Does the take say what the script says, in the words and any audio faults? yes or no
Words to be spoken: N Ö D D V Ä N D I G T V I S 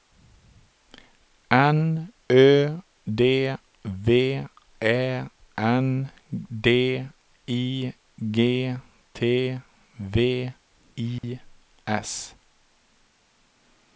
no